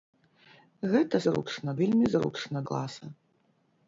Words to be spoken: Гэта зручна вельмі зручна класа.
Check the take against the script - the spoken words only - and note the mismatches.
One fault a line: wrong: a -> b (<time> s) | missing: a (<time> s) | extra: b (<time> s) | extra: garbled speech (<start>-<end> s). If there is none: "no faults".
no faults